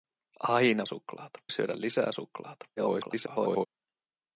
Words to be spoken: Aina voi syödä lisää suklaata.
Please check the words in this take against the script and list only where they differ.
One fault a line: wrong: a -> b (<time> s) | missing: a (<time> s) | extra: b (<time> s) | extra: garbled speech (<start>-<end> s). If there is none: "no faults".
wrong: voi -> suklaata (0.9 s)
extra: garbled speech (2.8-3.7 s)